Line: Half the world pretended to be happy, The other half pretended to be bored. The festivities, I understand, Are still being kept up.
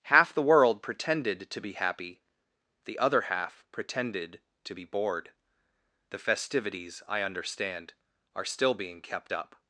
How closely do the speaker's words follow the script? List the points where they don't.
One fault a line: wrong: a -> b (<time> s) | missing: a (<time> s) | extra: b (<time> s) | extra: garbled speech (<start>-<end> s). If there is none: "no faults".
no faults